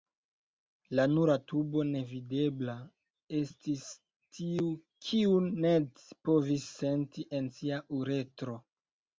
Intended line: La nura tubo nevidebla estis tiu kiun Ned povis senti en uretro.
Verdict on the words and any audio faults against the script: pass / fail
fail